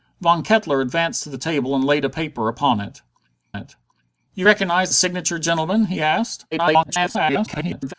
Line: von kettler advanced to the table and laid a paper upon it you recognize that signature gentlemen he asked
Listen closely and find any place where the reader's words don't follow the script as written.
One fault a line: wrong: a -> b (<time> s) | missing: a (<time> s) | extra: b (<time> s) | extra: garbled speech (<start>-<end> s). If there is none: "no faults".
extra: it (3.5 s)
missing: that (4.9 s)
extra: garbled speech (6.5-7.9 s)